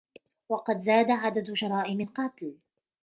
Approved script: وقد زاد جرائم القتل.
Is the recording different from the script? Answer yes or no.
yes